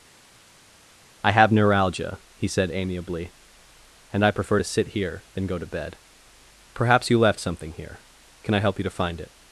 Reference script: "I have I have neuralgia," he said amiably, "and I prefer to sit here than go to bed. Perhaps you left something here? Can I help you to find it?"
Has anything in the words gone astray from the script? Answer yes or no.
yes